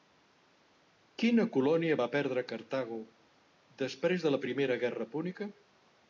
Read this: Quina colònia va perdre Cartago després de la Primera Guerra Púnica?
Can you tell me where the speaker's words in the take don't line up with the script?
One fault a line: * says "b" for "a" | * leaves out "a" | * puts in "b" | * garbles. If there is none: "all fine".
all fine